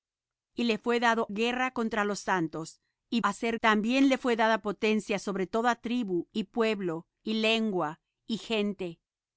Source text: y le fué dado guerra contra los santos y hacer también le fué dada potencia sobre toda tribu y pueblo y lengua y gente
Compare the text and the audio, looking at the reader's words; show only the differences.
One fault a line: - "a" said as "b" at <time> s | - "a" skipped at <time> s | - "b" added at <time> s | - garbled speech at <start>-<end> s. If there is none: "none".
none